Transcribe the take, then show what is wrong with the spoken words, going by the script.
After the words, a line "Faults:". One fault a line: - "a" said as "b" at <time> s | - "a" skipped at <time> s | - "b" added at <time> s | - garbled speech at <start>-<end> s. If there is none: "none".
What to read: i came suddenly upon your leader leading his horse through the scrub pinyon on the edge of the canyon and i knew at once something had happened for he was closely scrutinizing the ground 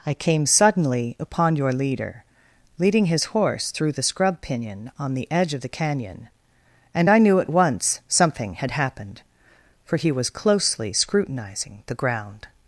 i came suddenly upon your leader leading his horse through the scrub pinyon on the edge of the canyon and i knew at once something had happened for he was closely scrutinizing the ground
Faults:
none